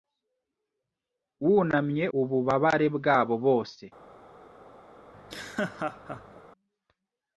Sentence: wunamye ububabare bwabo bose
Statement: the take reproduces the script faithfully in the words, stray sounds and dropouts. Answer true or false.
false